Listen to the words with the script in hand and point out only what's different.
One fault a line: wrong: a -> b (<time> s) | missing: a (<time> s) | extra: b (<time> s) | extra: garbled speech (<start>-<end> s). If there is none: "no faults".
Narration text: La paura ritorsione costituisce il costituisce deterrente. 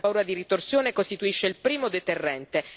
extra: di (0.2 s)
wrong: costituisce -> primo (1.6 s)